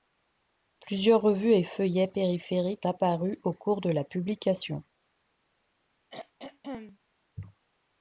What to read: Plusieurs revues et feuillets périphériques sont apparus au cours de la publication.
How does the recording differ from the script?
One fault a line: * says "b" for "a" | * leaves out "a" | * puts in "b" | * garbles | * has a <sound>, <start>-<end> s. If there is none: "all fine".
* leaves out "sont"
* has a throat clearing, 6.1-7.0 s